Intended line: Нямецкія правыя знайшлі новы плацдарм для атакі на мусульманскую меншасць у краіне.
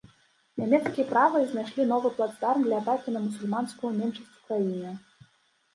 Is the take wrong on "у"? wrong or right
right